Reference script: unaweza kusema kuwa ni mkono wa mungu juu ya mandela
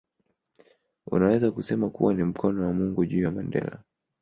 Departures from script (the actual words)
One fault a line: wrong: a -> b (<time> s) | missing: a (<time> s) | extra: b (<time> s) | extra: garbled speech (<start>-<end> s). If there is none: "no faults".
no faults